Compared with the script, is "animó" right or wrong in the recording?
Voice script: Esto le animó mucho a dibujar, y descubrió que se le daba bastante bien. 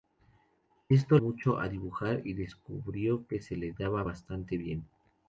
wrong